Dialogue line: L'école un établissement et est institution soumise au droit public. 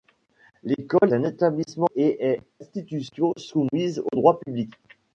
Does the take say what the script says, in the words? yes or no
yes